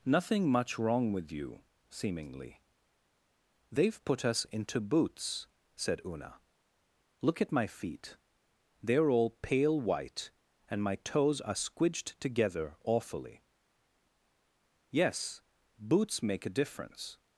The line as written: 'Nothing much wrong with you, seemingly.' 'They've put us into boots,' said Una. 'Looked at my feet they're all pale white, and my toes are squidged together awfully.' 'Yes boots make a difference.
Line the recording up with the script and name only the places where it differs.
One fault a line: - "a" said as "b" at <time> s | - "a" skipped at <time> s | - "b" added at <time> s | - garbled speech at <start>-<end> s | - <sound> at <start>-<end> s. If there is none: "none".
- "Looked" said as "Look" at 7.2 s